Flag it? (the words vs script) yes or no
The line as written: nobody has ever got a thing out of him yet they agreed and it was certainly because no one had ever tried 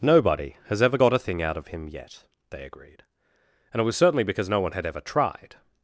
no